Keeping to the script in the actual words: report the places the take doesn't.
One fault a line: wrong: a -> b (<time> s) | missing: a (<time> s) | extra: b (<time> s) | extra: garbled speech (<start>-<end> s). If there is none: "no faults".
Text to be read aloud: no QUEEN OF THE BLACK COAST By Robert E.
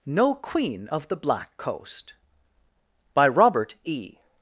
no faults